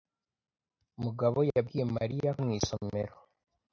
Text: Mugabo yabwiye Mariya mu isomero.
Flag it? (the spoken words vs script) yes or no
no